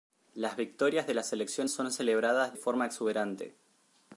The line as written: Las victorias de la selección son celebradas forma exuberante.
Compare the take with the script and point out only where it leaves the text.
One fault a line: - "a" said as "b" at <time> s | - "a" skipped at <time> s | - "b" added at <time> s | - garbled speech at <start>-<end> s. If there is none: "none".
none